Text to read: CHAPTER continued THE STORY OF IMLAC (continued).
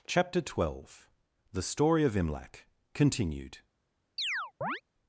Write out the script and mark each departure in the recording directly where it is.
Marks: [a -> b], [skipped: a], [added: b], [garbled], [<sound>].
CHAPTER [continued -> twelve] THE STORY OF IMLAC (continued). [chirp]